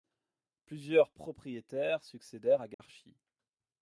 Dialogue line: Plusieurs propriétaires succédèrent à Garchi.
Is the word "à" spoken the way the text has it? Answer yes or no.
yes